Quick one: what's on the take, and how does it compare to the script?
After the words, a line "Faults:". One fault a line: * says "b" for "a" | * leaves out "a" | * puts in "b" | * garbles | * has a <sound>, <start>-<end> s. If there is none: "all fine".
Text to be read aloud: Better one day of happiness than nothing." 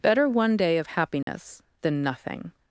Better one day of happiness than nothing."
Faults:
* has a dropout, 1.2-1.3 s